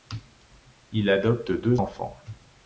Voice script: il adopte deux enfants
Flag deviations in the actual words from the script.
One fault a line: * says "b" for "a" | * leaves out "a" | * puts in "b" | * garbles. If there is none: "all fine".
all fine